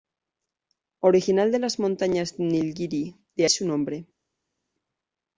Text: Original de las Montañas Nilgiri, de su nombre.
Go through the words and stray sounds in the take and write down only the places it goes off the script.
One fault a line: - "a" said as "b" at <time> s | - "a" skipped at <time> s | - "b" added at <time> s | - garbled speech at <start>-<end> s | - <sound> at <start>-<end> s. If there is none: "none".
none